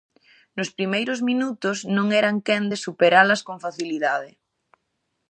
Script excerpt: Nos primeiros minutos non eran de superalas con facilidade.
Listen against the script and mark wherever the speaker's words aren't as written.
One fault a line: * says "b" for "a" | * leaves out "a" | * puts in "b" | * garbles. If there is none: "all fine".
* puts in "quen"